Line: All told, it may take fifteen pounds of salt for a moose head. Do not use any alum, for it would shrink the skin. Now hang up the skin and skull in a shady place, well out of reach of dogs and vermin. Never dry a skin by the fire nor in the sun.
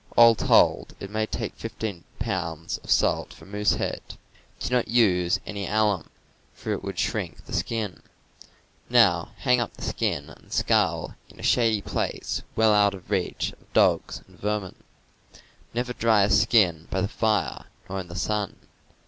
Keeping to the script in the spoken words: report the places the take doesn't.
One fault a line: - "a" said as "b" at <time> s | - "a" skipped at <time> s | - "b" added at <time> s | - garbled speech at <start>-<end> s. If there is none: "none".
none